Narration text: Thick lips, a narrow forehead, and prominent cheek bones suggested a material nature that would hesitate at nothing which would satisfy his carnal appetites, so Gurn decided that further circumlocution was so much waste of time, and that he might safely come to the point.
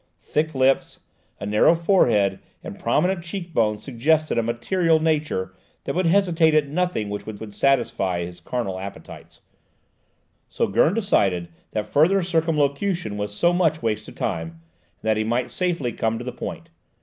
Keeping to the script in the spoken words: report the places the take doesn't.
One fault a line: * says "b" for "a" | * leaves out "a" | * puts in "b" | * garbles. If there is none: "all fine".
* puts in "would"